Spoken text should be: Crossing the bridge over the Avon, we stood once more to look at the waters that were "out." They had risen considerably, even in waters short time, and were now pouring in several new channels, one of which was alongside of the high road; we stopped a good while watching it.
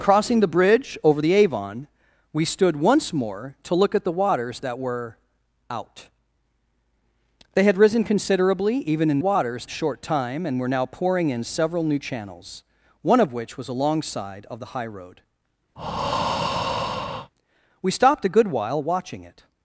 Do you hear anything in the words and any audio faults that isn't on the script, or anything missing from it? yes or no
yes